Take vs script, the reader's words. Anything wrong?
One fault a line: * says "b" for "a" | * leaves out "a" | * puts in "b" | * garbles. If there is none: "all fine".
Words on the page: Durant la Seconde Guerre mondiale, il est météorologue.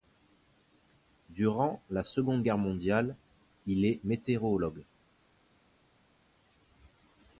all fine